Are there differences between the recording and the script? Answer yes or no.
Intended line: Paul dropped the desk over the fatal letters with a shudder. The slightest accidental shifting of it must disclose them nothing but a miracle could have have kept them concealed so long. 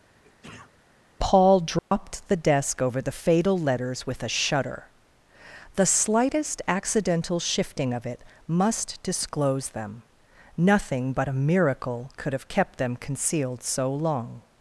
yes